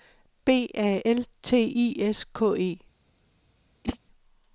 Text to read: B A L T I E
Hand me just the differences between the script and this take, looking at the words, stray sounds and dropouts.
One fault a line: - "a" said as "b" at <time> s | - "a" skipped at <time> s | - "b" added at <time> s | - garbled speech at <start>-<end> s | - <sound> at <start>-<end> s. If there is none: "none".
- "S K" added at 2.0 s
- whoosh at 3.8-4.0 s